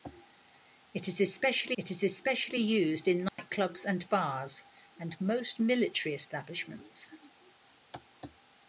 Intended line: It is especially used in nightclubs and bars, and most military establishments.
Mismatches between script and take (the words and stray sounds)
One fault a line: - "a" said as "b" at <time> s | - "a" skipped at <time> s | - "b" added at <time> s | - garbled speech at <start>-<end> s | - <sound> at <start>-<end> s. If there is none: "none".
- "it is especially" added at 1.8 s
- dropout at 3.3-3.4 s